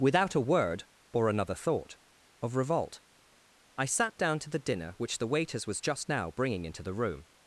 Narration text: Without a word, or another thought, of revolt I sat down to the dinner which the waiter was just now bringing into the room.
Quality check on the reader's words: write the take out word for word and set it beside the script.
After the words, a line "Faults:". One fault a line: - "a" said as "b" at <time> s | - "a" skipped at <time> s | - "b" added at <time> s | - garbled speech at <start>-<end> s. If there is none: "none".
Without a word, or another thought, of revolt I sat down to the dinner which the waiters was just now bringing into the room.
Faults:
- "waiter" said as "waiters" at 5.3 s